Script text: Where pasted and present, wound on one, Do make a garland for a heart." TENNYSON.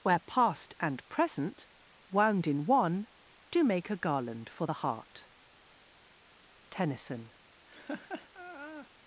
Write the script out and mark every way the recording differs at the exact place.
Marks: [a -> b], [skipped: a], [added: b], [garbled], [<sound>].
Where [pasted -> past] and present, wound [on -> in] one, Do make a garland for [a -> the] heart." TENNYSON. [laugh]